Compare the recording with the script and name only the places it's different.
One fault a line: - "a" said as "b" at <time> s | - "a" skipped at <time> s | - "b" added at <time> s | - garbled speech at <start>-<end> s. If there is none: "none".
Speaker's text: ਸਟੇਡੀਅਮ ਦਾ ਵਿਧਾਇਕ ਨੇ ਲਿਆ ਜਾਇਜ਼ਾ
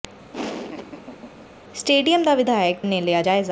none